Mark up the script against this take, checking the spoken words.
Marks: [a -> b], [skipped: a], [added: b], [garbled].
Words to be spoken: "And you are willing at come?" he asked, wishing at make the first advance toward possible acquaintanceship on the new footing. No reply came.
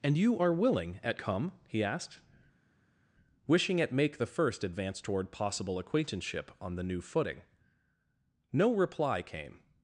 "And you are willing at come?" he asked, wishing at make the first advance toward possible acquaintanceship on the new footing. No reply came.